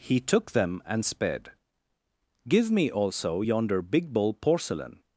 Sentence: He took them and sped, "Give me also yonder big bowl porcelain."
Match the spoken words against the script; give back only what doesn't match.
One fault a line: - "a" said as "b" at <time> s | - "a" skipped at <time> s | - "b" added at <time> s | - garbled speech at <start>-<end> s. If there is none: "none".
none